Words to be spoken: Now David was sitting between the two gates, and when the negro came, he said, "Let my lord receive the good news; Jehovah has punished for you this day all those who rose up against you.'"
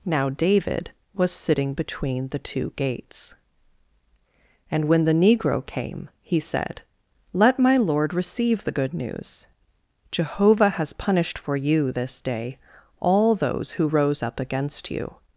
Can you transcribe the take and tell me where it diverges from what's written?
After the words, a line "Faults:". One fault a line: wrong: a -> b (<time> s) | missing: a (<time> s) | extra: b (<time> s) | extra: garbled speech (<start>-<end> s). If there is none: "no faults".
Now David was sitting between the two gates, and when the negro came, he said, "Let my lord receive the good news; Jehovah has punished for you this day all those who rose up against you.'"
Faults:
no faults